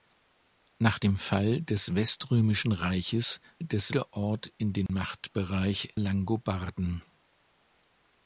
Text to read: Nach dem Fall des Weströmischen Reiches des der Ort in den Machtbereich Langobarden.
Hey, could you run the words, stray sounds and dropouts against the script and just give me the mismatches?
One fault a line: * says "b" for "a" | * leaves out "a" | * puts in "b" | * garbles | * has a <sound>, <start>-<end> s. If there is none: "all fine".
* has a dropout, 4.9-4.9 s